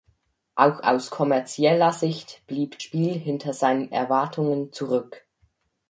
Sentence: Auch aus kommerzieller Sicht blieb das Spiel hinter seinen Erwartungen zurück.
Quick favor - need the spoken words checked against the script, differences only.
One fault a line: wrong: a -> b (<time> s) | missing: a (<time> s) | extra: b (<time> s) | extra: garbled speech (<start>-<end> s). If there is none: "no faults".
missing: das (2.8 s)